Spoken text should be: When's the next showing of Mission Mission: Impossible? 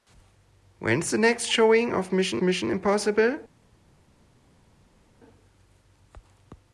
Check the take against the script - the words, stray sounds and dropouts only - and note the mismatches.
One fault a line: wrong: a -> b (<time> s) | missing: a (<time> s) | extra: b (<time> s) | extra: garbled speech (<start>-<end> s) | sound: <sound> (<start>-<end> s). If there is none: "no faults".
no faults